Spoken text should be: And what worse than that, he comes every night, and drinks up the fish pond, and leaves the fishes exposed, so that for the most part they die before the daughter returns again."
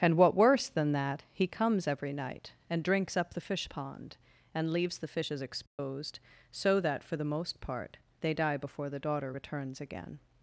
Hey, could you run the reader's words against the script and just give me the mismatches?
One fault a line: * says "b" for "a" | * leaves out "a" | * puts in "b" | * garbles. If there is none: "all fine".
all fine